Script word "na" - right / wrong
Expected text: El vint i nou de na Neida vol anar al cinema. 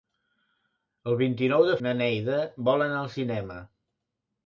right